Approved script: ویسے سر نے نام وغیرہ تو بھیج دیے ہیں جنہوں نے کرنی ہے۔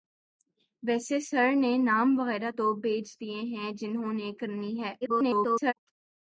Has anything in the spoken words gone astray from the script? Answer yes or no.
yes